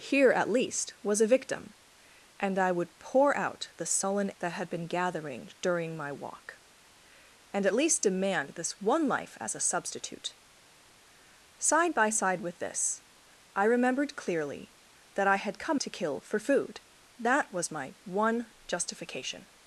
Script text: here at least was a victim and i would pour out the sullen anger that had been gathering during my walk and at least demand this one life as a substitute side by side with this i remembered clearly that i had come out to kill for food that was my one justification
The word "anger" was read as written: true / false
false